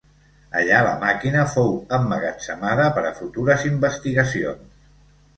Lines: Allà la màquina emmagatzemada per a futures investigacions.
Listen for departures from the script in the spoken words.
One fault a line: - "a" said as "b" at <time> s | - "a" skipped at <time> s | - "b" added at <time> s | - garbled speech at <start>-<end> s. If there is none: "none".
- "fou" added at 1.6 s